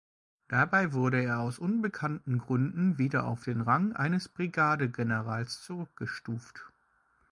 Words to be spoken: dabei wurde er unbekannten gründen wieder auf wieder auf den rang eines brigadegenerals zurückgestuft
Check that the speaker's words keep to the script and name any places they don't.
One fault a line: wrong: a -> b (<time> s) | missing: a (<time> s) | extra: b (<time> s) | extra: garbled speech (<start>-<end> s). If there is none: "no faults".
extra: aus (1.4 s)
missing: wieder auf (3.4 s)